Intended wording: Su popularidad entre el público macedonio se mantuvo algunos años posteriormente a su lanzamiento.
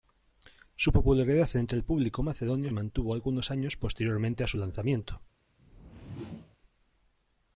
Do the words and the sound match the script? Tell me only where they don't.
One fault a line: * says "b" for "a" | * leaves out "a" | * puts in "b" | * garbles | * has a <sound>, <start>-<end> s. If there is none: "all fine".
* leaves out "se"
* has a whoosh, 5.6-6.6 s